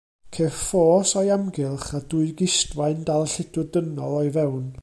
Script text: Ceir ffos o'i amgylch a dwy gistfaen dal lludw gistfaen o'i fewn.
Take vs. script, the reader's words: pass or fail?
fail